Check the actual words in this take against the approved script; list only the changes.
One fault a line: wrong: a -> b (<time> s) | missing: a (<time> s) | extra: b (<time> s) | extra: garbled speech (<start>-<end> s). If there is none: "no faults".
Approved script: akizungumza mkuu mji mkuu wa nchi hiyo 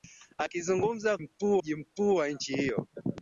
no faults